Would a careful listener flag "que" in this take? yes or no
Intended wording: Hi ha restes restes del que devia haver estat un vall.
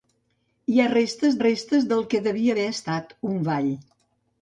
no